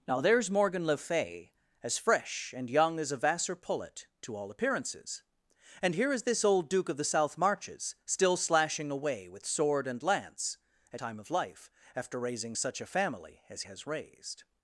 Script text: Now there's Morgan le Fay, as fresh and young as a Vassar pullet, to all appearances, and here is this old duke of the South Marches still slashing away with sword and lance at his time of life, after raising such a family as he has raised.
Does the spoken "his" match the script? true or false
false